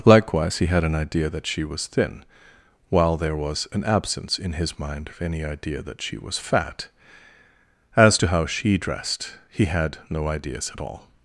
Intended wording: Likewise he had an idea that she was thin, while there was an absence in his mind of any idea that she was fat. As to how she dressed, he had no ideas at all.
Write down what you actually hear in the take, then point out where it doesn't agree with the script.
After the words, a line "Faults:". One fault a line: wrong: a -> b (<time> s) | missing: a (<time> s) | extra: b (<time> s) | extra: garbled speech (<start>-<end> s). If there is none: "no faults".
Likewise he had an idea that she was thin, while there was an absence in his mind of any idea that she was fat. As to how she dressed, he had no ideas at all.
Faults:
no faults